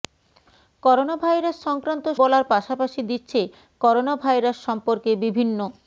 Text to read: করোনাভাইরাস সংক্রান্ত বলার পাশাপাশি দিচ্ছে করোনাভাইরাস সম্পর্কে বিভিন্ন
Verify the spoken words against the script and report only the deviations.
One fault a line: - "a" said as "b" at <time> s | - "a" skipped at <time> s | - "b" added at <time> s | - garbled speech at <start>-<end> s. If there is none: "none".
none